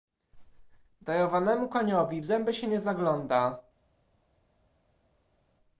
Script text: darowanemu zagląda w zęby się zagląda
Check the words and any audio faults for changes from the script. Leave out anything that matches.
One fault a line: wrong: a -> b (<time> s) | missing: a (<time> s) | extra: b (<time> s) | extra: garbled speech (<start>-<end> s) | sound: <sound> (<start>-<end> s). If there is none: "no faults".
wrong: zagląda -> koniowi (1.7 s)
extra: nie (2.7 s)